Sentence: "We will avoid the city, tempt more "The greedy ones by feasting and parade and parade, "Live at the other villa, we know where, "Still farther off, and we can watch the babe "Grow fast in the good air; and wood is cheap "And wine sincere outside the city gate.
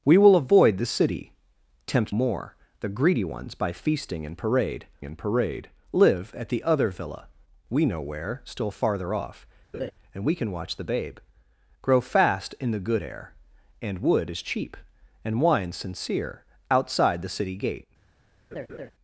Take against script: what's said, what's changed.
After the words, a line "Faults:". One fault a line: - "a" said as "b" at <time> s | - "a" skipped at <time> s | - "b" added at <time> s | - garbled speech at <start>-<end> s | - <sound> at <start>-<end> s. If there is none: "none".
"We will avoid the city, tempt more "The greedy ones by feasting and parade and parade, "Live at the other villa, we know where, "Still farther off, and we can watch the babe "Grow fast in the good air; and wood is cheap "And wine sincere outside the city gate.
Faults:
- laugh at 9.7-9.9 s
- laugh at 18.5-18.9 s